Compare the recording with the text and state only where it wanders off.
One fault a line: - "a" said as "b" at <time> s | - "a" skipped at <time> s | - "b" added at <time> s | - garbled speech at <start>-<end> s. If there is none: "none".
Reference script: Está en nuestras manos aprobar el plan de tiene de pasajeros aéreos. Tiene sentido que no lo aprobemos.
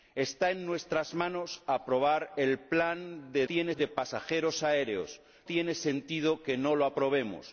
none